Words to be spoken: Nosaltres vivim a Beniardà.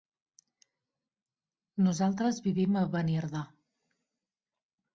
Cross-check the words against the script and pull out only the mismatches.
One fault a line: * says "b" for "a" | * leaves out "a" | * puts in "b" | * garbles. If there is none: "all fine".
all fine